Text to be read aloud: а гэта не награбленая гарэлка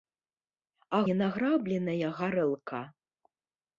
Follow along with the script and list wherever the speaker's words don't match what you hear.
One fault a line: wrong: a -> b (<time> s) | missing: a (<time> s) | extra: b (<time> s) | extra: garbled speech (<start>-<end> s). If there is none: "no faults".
missing: гэта (1.0 s)